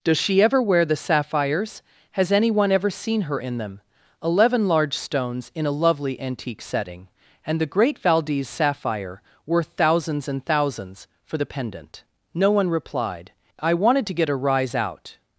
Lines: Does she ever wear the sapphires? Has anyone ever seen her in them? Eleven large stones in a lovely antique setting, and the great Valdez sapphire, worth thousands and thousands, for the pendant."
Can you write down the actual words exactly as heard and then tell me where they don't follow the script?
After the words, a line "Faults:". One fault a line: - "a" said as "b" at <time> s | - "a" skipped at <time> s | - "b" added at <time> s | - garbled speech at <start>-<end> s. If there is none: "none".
Does she ever wear the sapphires? Has anyone ever seen her in them? Eleven large stones in a lovely antique setting, and the great Valdez sapphire, worth thousands and thousands, for the pendant." No one replied. "I wanted to get a rise out
Faults:
- "No one replied I wanted to get a rise out" added at 12.3 s